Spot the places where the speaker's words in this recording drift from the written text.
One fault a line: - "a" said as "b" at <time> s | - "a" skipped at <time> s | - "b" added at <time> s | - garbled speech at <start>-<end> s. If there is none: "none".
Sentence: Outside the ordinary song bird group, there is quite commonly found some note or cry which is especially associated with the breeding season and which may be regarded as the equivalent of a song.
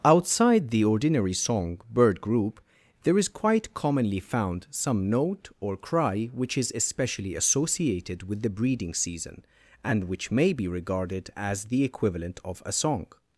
none